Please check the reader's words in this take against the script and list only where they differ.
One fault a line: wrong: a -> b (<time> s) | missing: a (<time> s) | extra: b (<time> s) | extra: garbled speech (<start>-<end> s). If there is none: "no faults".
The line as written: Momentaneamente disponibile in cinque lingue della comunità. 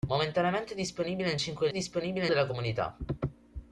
wrong: lingue -> disponibile (1.7 s)